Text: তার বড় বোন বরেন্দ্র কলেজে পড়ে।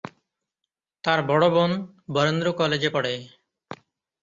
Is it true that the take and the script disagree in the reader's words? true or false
false